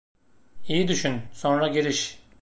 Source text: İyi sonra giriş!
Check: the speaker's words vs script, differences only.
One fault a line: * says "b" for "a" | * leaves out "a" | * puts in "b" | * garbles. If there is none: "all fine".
* puts in "düşün"